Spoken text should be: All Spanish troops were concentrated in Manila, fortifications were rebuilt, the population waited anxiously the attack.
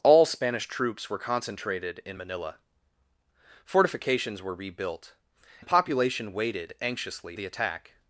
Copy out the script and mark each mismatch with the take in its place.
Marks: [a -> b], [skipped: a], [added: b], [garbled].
All Spanish troops were concentrated in Manila, fortifications were rebuilt, the population waited anxiously the attack.